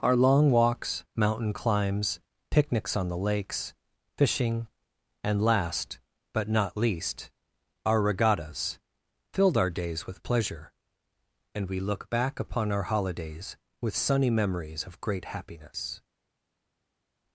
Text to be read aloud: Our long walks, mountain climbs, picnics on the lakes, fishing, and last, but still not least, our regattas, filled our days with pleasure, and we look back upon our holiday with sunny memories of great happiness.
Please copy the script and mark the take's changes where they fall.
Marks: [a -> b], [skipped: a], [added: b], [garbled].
Our long walks, mountain climbs, picnics on the lakes, fishing, and last, but [skipped: still] not least, our regattas, filled our days with pleasure, and we look back upon our [holiday -> holidays] with sunny memories of great happiness.